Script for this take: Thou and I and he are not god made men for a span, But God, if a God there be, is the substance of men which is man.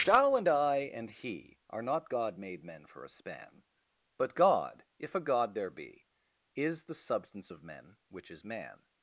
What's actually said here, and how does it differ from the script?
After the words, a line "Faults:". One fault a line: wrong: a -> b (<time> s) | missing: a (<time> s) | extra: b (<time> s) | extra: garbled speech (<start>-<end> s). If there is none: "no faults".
Thou and I and he are not god made men for a span, But God, if a God there be, is the substance of men which is man.
Faults:
no faults